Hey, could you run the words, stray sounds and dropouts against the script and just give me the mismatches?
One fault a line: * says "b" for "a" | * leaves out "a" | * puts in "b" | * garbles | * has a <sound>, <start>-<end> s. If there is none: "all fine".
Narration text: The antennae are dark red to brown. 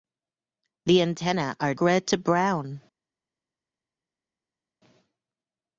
* leaves out "dark"